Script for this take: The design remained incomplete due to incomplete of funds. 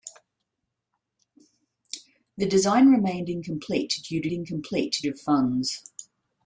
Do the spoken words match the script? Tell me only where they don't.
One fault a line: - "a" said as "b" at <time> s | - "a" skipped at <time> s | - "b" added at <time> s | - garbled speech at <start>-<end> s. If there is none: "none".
none